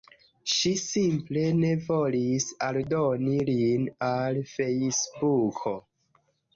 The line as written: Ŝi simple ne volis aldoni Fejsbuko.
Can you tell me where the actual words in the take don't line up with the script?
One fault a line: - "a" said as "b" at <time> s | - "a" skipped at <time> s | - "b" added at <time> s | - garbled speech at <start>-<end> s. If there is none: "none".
- "lin al" added at 3.5 s